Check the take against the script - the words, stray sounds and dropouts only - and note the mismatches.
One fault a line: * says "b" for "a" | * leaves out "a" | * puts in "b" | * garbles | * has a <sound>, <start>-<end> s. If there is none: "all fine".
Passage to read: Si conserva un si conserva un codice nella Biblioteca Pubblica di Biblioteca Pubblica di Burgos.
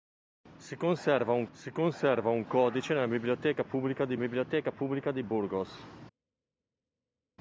all fine